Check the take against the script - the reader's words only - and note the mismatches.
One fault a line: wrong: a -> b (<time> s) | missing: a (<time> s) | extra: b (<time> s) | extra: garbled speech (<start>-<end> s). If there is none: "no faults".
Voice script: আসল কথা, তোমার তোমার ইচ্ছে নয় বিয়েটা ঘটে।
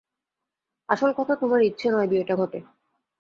missing: তোমার (1.6 s)